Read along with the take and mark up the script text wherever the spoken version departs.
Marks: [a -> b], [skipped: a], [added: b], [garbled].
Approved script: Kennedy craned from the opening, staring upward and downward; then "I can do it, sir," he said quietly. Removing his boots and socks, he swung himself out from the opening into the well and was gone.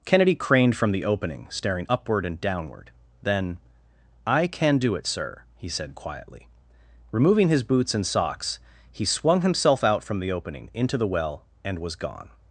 Kennedy craned from the opening, staring upward and downward; then "I can do it, sir," he said quietly. Removing his boots and socks, he swung himself out from the opening into the well and was gone.